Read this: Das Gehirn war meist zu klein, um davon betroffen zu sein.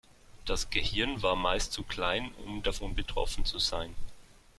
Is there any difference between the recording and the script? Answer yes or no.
no